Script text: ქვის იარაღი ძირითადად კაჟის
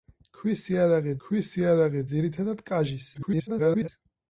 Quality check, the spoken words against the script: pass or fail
fail